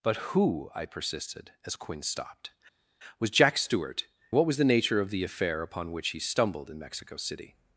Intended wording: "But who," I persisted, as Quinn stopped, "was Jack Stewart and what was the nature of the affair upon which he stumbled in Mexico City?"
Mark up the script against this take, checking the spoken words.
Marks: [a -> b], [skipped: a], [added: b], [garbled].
"But who," I persisted, as Quinn stopped, "was Jack Stewart [skipped: and] what was the nature of the affair upon which he stumbled in Mexico City?"